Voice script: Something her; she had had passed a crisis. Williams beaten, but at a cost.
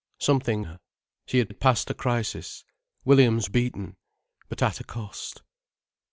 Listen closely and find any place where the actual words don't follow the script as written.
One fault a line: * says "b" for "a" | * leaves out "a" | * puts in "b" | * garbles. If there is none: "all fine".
all fine